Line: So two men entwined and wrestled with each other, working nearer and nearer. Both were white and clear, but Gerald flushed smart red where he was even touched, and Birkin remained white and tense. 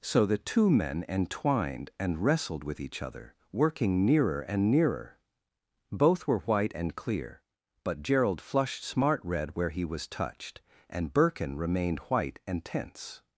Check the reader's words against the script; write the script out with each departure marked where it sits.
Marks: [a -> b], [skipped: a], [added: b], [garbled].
So [added: the] two men entwined and wrestled with each other, working nearer and nearer. Both were white and clear, but Gerald flushed smart red where he was [skipped: even] touched, and Birkin remained white and tense.